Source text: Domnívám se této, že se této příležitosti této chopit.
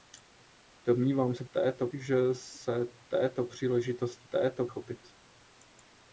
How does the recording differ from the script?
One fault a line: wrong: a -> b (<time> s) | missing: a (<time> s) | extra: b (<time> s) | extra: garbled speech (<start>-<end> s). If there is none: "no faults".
no faults